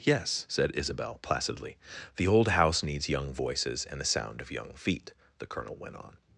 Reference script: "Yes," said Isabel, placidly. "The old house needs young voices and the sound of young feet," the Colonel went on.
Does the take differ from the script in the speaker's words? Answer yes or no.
no